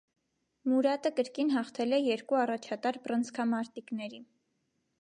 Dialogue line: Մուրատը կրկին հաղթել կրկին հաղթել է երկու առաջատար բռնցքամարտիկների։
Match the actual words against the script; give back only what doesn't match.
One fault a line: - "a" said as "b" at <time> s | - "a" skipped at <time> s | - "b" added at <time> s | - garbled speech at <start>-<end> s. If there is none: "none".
- "կրկին հաղթել" skipped at 1.9 s